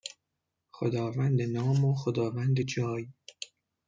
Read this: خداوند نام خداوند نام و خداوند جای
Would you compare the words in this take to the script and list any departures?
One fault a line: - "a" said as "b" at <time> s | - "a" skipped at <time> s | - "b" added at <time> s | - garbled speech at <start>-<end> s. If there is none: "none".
- "خداوند نام" skipped at 1.9 s